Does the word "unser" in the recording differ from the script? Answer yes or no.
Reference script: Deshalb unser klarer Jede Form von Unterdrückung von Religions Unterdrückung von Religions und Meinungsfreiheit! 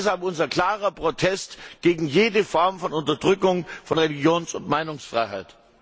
no